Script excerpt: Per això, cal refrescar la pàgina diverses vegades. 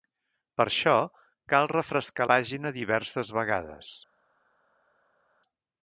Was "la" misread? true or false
true